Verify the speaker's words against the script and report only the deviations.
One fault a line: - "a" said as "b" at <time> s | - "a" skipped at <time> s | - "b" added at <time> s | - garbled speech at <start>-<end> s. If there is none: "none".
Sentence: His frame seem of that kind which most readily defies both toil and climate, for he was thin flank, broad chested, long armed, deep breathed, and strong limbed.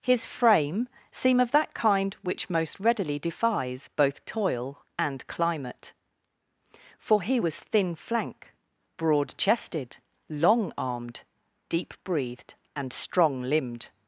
none